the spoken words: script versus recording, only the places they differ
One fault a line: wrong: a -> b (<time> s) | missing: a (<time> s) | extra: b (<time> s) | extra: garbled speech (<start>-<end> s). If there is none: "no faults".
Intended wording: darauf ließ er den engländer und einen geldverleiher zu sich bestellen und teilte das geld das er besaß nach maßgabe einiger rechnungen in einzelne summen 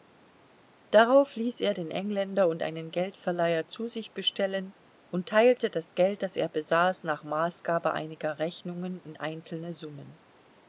no faults